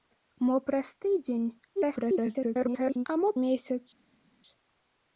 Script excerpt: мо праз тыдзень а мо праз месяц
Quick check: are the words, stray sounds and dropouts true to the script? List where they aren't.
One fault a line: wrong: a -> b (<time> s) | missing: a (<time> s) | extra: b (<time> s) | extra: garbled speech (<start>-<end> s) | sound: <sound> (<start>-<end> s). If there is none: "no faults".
extra: garbled speech (1.8-3.1 s)
missing: праз (3.3 s)